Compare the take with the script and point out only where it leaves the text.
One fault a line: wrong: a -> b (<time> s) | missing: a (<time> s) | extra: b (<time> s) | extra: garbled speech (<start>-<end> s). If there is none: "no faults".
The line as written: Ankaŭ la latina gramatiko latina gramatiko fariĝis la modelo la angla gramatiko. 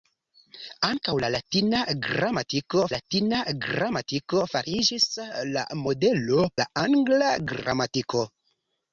no faults